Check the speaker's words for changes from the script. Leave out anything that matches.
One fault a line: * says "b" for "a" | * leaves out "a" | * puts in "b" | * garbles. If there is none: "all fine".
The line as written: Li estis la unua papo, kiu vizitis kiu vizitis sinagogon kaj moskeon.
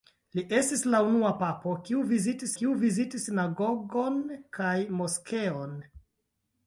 all fine